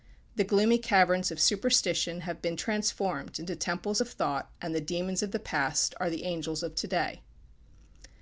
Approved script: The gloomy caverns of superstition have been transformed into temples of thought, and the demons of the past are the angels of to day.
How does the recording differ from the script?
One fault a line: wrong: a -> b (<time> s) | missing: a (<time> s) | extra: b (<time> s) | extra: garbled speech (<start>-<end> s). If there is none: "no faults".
no faults